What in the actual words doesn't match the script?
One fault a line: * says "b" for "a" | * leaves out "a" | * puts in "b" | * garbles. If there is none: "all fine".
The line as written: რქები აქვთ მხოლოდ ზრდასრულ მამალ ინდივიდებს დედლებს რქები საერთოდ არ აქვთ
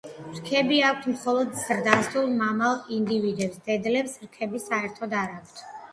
all fine